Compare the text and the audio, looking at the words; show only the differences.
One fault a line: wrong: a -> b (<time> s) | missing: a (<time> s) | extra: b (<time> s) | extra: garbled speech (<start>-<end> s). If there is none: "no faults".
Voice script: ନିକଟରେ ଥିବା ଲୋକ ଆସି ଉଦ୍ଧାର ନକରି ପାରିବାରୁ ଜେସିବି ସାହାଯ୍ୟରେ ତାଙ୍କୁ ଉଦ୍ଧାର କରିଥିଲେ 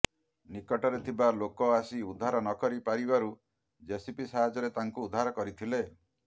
no faults